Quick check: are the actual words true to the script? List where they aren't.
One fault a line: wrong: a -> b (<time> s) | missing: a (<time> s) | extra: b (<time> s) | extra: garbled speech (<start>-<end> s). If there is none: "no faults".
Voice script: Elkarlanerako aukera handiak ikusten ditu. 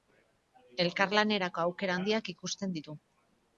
no faults